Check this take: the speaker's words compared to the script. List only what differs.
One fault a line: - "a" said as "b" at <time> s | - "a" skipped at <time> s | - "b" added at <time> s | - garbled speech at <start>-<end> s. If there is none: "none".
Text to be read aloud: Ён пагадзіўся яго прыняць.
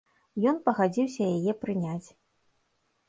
- "яго" said as "яе" at 1.4 s